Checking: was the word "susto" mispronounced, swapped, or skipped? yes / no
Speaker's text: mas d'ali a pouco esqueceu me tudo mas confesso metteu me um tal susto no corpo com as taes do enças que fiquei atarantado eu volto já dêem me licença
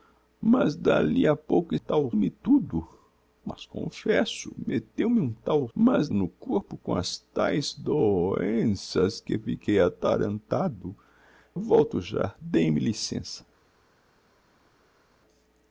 yes